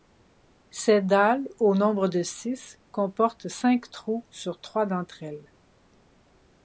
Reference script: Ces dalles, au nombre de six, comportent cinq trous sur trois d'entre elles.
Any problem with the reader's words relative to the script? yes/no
no